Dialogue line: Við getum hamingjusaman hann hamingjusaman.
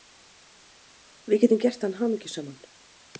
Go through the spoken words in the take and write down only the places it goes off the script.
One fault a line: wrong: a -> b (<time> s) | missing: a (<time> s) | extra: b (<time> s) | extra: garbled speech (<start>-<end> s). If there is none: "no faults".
wrong: hamingjusaman -> gert (1.6 s)